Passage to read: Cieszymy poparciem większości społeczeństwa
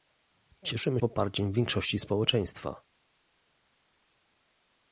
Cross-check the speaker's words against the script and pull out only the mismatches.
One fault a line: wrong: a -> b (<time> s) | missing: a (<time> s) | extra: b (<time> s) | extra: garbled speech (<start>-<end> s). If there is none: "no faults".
no faults